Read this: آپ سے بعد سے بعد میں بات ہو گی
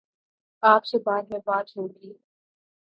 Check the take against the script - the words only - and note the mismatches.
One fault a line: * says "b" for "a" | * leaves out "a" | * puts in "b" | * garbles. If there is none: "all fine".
* leaves out "سے بعد"